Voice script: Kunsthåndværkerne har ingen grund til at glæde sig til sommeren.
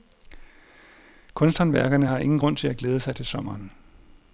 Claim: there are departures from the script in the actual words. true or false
false